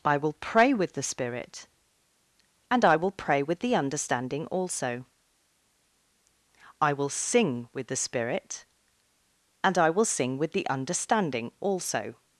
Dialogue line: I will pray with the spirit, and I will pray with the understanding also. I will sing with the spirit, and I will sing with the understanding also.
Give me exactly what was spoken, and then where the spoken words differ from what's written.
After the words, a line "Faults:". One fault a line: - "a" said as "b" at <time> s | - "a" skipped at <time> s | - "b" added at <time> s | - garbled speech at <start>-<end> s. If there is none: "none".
I will pray with the spirit, and I will pray with the understanding also. I will sing with the spirit, and I will sing with the understanding also.
Faults:
none